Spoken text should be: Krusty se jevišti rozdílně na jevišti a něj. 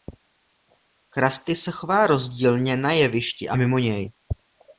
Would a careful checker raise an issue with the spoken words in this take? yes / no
yes